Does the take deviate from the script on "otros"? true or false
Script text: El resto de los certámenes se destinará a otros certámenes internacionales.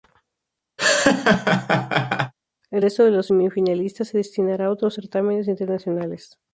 false